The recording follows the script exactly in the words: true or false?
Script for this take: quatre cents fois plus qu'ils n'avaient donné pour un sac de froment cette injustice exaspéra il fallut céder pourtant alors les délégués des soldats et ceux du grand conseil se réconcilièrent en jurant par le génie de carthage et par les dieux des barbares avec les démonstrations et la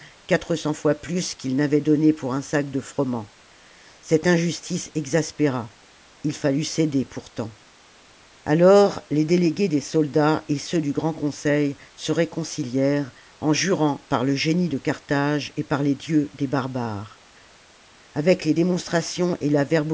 true